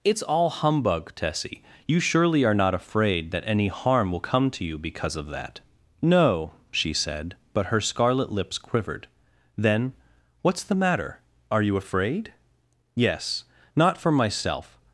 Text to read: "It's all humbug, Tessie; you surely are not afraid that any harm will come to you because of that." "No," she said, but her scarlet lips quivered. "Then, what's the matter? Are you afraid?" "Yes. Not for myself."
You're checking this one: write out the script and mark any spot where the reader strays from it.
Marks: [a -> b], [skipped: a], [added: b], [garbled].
"It's all humbug, Tessie; you surely are not afraid that any harm will come to you because of that." "No," she said, but her scarlet lips quivered. "Then, what's the matter? Are you afraid?" "Yes. Not for myself."